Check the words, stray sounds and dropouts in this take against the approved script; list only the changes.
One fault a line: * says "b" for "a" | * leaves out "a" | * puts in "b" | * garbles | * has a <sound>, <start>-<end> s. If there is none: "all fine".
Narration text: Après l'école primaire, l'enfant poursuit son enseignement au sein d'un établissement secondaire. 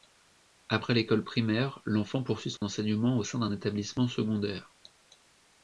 * has a dropout, 2.6-2.6 s